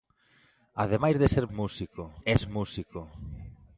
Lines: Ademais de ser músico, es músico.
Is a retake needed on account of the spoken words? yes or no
no